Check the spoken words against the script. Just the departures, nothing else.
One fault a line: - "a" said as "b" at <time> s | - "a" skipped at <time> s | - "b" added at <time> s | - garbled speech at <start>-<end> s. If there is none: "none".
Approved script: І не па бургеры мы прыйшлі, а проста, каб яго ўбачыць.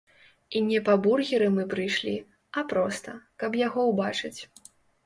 none